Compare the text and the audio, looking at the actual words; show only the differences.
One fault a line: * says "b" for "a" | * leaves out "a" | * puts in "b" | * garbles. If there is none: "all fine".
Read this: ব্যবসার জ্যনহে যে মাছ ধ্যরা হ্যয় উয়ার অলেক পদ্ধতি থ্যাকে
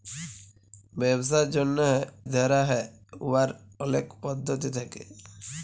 * leaves out "যে মাছ"